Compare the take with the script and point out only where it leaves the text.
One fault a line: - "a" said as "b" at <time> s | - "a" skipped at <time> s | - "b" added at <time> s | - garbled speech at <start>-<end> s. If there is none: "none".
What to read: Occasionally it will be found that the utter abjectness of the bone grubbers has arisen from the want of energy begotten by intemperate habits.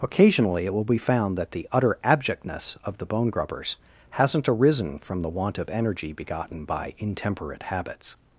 - "has" said as "hasn't" at 4.1 s